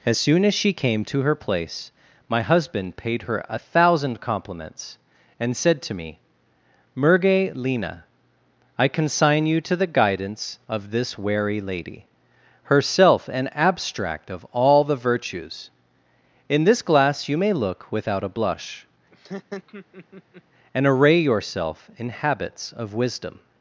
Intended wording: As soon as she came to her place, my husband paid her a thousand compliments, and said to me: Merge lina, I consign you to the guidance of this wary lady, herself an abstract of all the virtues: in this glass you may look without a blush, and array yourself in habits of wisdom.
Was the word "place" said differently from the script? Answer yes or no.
no